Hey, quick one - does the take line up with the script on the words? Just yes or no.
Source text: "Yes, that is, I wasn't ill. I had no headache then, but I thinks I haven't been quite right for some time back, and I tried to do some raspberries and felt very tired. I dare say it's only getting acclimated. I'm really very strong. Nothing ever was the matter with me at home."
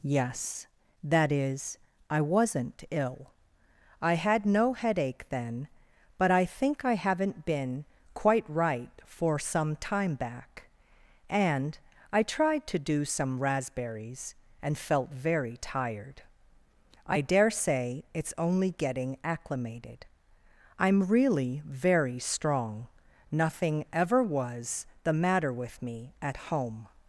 no